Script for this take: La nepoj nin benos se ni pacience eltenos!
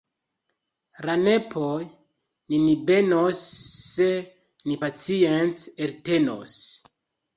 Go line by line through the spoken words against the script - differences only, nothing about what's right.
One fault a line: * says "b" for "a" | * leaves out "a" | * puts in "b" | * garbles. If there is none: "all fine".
all fine